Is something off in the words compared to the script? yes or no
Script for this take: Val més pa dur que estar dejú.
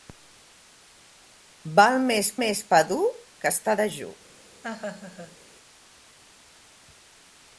yes